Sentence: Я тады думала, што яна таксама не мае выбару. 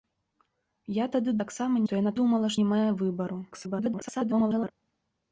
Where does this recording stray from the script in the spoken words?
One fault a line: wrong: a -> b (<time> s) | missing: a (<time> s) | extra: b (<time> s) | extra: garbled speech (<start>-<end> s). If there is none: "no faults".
wrong: думала -> таксама (1.4 s)
wrong: таксама -> думала (2.2 s)
extra: garbled speech (3.5-4.7 s)